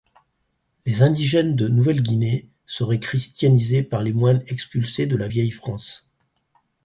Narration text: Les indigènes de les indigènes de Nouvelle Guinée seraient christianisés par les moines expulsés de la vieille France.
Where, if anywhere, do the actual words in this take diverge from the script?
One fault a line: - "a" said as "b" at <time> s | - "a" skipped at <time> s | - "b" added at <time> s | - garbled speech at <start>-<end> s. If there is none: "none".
- "les indigènes de" skipped at 1.7 s